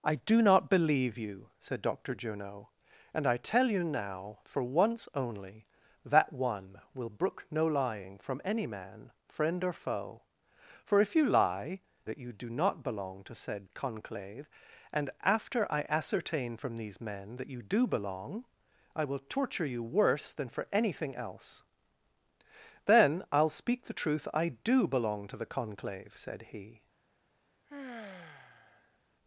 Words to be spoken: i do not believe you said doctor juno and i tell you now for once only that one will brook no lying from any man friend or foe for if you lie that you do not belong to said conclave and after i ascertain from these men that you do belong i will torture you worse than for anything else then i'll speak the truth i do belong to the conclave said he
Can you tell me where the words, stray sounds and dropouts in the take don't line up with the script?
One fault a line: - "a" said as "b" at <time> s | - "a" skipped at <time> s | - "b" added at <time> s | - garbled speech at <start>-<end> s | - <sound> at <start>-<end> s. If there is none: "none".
- sigh at 27.7-29.0 s